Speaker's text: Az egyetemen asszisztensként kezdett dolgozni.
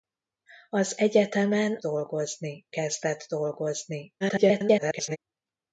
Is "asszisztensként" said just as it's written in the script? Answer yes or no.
no